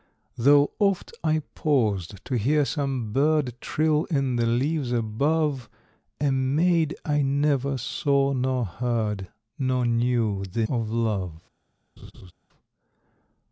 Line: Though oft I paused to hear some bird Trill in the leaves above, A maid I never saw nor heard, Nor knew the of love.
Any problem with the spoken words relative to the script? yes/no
no